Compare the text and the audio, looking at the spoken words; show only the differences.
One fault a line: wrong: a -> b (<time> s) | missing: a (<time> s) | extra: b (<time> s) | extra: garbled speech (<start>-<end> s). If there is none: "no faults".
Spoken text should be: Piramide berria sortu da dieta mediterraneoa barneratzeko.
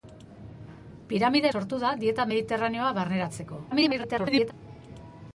missing: berria (1.5 s)
extra: garbled speech (3.7-4.5 s)